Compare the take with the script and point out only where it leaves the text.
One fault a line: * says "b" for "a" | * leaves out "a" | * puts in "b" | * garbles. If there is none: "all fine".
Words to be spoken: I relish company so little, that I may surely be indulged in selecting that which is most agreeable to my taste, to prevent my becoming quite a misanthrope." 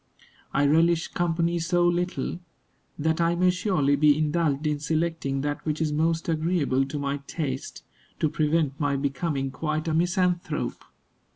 all fine